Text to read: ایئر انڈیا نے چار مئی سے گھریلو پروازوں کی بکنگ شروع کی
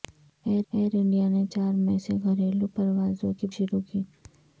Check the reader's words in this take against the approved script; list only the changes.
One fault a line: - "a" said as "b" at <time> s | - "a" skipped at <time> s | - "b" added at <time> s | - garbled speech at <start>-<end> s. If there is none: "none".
- "ایئر" added at 0.7 s
- "بکنگ" skipped at 3.5 s